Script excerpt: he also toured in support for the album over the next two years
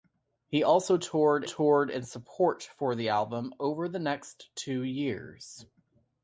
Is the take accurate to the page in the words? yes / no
no